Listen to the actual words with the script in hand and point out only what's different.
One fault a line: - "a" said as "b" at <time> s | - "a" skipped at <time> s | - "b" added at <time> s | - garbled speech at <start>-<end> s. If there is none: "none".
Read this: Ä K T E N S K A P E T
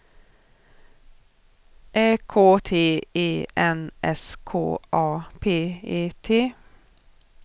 none